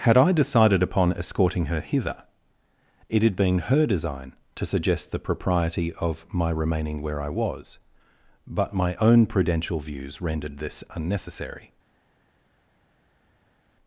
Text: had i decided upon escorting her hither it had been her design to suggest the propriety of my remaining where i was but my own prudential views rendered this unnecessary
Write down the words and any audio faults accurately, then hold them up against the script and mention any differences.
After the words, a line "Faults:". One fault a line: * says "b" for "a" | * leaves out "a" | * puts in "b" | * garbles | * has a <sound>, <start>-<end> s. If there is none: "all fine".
had i decided upon escorting her hither it had been her design to suggest the propriety of my remaining where i was but my own prudential views rendered this unnecessary
Faults:
all fine